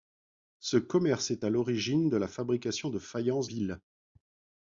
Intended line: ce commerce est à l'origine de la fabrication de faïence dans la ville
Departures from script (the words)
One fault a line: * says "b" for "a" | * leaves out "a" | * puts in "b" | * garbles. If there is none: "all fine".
* leaves out "dans la"